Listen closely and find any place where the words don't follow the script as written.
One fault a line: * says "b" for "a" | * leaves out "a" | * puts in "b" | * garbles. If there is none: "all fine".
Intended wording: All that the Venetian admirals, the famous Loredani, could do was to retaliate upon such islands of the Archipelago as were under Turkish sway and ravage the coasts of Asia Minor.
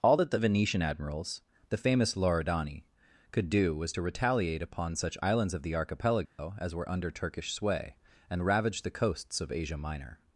all fine